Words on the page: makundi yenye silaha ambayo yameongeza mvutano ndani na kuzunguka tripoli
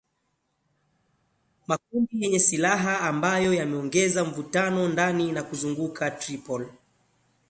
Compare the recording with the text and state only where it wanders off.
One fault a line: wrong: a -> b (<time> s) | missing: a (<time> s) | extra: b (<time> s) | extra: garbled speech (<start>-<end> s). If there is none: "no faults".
no faults